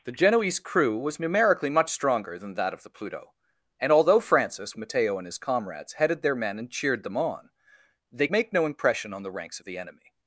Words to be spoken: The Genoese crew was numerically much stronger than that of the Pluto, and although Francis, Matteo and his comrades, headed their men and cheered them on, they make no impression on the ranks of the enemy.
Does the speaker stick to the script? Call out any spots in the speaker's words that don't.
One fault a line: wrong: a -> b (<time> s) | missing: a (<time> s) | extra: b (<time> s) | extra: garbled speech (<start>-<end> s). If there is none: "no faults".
no faults